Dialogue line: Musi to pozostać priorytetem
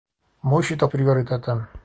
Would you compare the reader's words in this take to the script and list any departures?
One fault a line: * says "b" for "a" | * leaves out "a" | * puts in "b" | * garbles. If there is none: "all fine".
* leaves out "pozostać"